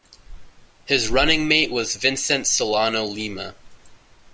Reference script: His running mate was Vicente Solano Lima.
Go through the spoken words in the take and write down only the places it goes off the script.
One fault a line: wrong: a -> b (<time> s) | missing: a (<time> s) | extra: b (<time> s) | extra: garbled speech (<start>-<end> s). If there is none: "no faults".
no faults